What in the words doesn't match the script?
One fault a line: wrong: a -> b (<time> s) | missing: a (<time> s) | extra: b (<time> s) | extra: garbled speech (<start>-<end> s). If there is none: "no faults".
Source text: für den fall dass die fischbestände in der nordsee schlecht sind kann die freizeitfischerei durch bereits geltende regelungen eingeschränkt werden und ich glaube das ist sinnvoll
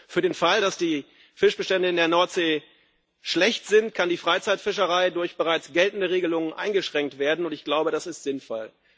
no faults